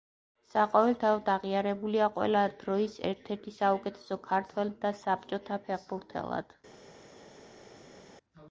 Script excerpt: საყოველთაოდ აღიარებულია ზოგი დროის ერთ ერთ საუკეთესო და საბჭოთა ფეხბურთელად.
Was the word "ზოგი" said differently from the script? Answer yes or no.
yes